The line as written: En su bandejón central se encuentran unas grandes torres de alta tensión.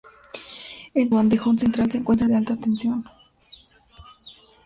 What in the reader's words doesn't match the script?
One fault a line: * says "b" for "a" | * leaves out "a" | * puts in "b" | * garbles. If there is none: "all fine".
* leaves out "su"
* leaves out "unas grandes torres"